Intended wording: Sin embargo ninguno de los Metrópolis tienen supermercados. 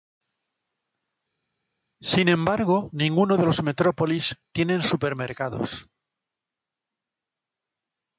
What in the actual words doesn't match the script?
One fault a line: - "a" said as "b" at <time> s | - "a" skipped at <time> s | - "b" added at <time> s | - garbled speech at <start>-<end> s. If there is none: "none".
none